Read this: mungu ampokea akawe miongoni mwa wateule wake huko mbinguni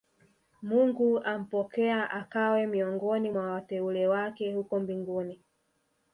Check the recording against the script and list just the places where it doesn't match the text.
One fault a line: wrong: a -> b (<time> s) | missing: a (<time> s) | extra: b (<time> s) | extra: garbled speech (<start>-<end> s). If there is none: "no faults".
no faults